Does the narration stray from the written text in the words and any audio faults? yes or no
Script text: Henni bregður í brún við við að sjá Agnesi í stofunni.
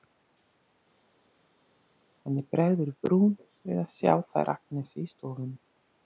yes